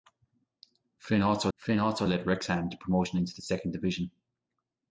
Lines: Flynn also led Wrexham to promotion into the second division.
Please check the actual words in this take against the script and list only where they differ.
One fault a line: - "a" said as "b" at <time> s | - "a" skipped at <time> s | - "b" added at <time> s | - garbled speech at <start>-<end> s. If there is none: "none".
- "flynn also" added at 1.6 s